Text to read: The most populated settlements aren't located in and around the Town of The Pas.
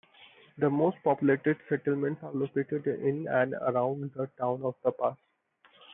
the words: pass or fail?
fail